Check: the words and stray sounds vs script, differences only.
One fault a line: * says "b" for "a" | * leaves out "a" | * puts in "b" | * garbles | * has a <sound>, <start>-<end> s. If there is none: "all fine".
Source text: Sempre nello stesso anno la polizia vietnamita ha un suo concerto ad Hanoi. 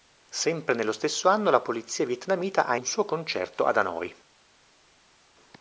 all fine